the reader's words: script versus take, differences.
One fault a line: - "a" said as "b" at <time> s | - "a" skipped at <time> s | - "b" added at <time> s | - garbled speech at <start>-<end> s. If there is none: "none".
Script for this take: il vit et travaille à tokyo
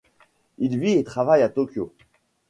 none